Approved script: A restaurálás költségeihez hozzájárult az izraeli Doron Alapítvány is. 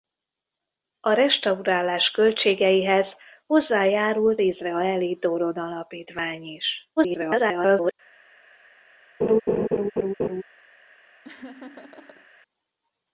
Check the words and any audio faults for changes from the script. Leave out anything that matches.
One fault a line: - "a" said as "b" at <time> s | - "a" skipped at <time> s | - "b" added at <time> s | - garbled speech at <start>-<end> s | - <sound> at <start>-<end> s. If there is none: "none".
- "az" skipped at 4.4 s
- garbled speech at 7.0-7.9 s
- laugh at 9.2-10.4 s
- laugh at 11.2-12.3 s